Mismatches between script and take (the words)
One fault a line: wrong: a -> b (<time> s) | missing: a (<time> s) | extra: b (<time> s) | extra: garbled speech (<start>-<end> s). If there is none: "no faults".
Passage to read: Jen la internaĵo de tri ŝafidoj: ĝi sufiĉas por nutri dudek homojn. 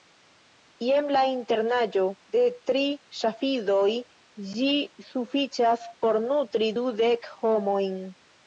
no faults